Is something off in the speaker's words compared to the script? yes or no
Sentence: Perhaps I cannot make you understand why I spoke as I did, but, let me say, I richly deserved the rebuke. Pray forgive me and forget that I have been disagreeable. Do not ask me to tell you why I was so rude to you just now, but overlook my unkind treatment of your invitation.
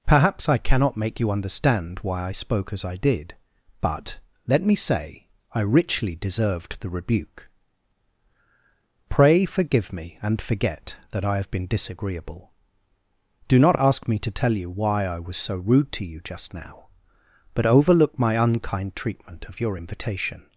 no